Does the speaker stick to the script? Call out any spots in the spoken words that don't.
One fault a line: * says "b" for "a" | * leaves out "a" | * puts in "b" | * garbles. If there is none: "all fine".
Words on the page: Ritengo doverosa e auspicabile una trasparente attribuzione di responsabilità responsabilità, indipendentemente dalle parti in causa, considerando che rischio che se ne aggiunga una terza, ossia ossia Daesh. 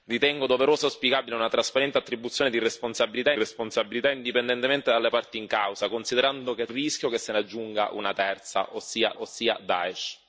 all fine